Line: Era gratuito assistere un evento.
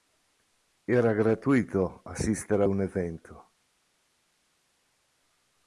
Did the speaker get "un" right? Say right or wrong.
right